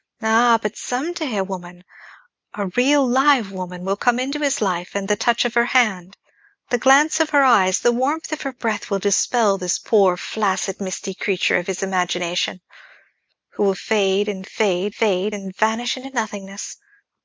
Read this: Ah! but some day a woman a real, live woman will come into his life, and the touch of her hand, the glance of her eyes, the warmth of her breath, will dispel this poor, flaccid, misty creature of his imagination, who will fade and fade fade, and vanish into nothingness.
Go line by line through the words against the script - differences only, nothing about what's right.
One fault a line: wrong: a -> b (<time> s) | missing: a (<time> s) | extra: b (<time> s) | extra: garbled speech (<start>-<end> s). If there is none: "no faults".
no faults